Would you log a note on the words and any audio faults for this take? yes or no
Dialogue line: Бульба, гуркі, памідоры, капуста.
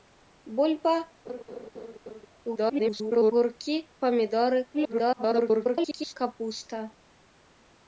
yes